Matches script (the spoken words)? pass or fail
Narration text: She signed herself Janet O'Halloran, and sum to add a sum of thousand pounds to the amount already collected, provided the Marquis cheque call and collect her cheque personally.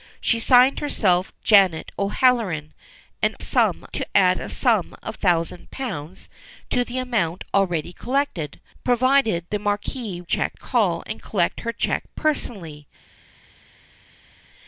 pass